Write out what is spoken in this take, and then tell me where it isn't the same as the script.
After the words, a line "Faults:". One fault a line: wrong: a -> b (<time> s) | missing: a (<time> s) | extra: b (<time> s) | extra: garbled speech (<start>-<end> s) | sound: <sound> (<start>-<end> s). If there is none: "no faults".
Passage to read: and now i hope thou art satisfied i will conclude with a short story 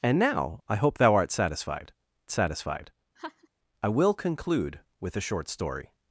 and now i hope thou art satisfied satisfied i will conclude with a short story
Faults:
extra: satisfied (2.3 s)
sound: laugh (3.2-3.5 s)